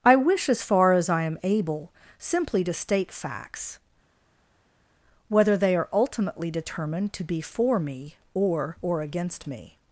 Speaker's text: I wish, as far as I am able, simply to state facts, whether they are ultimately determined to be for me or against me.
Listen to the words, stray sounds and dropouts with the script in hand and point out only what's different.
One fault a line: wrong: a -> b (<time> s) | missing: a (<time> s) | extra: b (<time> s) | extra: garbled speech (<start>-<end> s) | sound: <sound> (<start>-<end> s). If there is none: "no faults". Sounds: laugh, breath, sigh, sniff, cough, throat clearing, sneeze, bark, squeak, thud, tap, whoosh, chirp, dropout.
extra: or (8.8 s)